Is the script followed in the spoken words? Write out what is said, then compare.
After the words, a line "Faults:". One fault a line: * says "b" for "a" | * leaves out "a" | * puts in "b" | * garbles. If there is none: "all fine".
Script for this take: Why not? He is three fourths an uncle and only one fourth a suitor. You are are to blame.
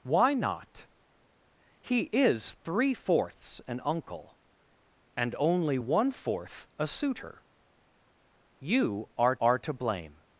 Why not? He is three fourths an uncle and only one fourth a suitor. You are are to blame.
Faults:
all fine